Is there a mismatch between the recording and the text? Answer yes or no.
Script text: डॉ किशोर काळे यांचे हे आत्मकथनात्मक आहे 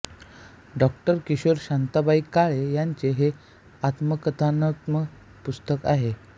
yes